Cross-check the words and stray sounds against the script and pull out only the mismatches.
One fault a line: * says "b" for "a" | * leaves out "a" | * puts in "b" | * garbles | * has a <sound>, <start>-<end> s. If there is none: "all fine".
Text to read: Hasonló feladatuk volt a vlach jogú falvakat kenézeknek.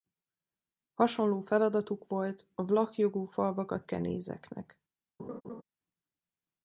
* has a laugh, 5.2-5.6 s